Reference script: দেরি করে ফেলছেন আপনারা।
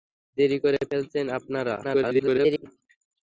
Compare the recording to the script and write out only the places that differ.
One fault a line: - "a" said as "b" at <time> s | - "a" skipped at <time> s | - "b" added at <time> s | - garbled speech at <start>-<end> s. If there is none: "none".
- garbled speech at 1.8-2.7 s